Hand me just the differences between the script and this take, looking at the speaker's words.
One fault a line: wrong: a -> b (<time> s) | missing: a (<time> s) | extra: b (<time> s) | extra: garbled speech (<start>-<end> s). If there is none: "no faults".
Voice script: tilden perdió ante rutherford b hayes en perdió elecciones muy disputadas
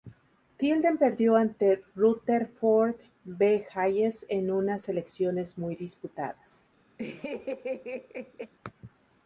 wrong: perdió -> unas (4.5 s)